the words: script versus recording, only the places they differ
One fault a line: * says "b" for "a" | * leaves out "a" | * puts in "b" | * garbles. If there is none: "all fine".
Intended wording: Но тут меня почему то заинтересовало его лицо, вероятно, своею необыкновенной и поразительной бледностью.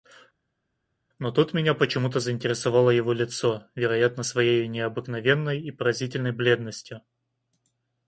all fine